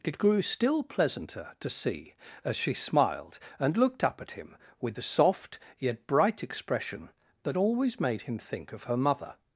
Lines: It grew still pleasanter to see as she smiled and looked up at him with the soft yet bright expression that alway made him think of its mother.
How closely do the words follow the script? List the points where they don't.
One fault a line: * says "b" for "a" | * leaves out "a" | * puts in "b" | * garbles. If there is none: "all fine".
* says "always" for "alway"
* says "her" for "its"